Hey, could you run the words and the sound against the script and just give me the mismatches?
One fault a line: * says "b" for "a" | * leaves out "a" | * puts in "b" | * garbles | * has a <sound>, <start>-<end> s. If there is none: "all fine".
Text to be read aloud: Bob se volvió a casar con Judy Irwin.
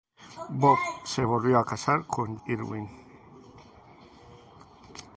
* leaves out "Judy"